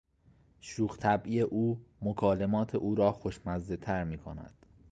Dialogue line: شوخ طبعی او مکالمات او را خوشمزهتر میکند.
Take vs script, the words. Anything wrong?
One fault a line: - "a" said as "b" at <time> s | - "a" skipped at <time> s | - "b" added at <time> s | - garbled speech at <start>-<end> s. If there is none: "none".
none